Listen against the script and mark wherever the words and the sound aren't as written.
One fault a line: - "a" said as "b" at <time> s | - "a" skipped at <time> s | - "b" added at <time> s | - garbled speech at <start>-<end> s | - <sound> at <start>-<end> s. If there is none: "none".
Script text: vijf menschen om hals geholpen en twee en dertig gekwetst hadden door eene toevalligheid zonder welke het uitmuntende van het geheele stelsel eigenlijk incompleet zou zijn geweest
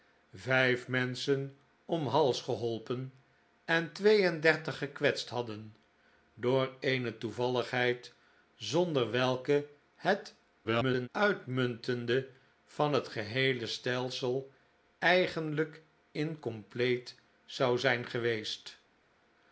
- garbled speech at 10.6-11.1 s